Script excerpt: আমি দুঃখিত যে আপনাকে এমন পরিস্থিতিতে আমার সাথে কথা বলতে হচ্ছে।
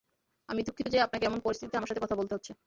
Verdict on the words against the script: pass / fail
pass